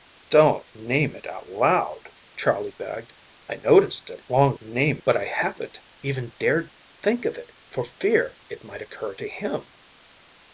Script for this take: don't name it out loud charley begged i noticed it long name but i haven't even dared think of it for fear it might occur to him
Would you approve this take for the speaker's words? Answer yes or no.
yes